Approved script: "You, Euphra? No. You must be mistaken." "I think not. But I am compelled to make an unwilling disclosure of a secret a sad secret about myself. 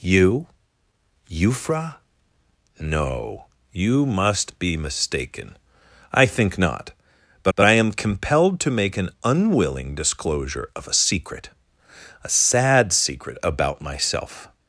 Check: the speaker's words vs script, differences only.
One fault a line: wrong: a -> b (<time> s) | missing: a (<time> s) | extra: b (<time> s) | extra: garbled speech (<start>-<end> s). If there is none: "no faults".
extra: but (7.6 s)